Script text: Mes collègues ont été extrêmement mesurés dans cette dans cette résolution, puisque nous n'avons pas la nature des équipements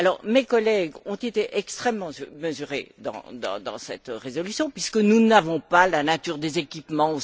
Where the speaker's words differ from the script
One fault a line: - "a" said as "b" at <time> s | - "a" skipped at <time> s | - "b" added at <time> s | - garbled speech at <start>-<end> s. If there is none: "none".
- "dans cette" skipped at 4.1 s